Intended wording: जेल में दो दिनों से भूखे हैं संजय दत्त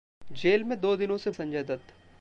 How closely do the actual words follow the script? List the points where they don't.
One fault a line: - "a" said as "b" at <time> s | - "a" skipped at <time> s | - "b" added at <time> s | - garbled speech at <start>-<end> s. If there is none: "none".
- "भूखे हैं" skipped at 1.3 s